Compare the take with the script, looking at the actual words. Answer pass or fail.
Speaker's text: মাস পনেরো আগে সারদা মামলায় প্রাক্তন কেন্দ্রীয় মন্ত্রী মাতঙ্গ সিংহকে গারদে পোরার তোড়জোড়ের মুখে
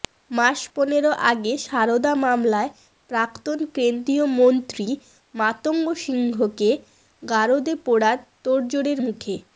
pass